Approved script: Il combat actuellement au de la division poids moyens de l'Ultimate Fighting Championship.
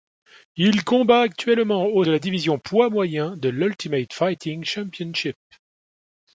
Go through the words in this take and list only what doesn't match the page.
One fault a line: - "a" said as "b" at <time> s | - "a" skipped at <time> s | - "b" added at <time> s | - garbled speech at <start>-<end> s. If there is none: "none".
none